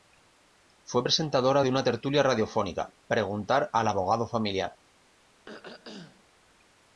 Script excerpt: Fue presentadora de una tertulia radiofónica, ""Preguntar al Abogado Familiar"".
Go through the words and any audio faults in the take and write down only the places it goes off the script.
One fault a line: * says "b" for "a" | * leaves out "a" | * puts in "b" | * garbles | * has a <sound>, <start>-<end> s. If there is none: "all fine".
* has a throat clearing, 5.5-6.3 s